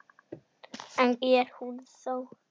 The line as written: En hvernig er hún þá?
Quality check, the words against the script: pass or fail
fail